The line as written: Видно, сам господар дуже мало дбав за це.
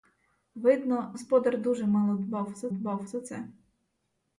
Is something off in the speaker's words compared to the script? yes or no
yes